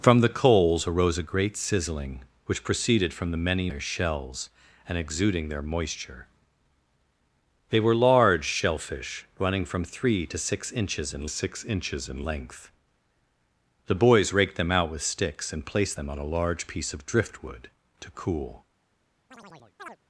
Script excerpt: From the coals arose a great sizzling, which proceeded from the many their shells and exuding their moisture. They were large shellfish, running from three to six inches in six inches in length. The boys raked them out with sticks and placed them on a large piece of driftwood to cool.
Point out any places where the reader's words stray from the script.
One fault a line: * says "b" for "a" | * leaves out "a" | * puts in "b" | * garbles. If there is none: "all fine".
all fine